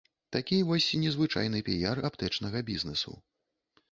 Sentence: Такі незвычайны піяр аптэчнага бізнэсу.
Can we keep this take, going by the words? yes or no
no